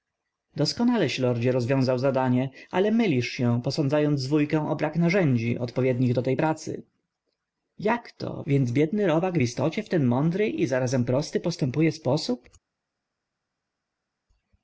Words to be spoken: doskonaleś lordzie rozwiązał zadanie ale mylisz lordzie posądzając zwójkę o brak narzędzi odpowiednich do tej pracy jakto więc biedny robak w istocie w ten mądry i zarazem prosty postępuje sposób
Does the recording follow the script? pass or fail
fail